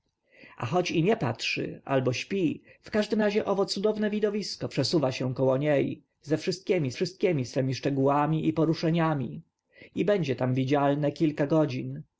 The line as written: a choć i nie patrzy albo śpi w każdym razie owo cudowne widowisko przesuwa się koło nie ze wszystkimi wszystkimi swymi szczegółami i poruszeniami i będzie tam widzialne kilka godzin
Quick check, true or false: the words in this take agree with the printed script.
true